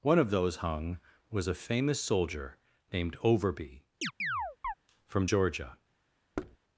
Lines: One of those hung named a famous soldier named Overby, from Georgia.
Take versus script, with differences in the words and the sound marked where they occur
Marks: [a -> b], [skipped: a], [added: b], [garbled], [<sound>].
One of those hung [named -> was] a famous soldier named Overby, [chirp] from Georgia. [thud]